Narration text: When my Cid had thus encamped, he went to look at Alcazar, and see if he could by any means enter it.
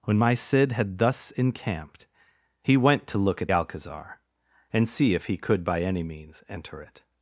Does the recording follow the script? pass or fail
pass